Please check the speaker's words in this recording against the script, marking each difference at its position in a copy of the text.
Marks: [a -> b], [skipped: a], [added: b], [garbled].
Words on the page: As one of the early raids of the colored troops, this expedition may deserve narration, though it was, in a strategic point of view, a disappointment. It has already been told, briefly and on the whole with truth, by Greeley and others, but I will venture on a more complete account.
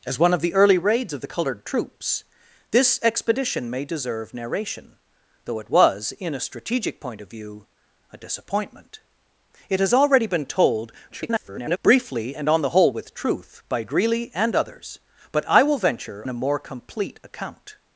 As one of the early raids of the colored troops, this expedition may deserve narration, though it was, in a strategic point of view, a disappointment. It has already been told, [garbled] briefly and on the whole with truth, by Greeley and others, but I will venture [skipped: on] a more complete account.